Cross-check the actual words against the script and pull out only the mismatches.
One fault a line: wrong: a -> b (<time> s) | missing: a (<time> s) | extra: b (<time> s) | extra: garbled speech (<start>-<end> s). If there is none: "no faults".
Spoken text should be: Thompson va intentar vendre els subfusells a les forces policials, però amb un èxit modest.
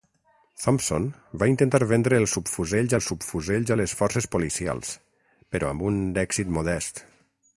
extra: els subfusells (2.9 s)